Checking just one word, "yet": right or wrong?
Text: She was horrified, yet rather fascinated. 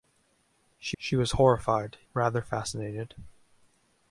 wrong